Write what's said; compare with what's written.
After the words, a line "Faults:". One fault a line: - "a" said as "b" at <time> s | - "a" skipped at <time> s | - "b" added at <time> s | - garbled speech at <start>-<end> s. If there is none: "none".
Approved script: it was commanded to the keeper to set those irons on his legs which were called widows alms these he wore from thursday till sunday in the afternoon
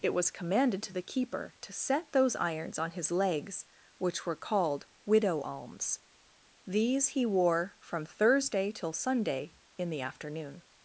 it was commanded to the keeper to set those irons on his legs which were called widow alms these he wore from thursday till sunday in the afternoon
Faults:
- "widows" said as "widow" at 5.1 s